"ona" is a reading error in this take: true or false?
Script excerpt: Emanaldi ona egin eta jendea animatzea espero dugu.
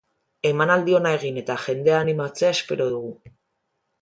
false